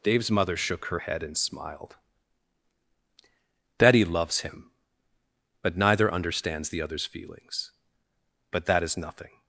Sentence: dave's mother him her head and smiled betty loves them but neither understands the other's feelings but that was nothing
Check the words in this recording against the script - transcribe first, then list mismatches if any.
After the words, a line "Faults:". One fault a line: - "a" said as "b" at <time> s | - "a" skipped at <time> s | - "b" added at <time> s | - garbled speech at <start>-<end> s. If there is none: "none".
dave's mother shook her head and smiled betty loves him but neither understands the other's feelings but that is nothing
Faults:
- "him" said as "shook" at 0.6 s
- "them" said as "him" at 4.4 s
- "was" said as "is" at 8.8 s